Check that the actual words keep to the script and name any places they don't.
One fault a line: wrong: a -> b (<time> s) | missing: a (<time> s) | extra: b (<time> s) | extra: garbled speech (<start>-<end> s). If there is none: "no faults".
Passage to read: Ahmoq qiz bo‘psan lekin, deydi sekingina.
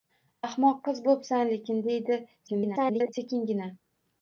extra: garbled speech (2.5-3.1 s)